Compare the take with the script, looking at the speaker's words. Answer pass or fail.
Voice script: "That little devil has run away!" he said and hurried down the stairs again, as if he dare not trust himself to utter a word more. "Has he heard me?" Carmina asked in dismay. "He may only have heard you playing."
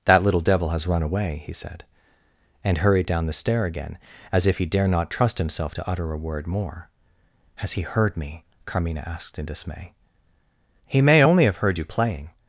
fail